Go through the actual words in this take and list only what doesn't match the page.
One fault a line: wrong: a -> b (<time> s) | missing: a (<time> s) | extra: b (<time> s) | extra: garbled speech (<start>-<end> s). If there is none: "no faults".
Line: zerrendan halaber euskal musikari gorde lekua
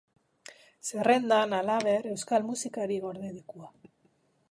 no faults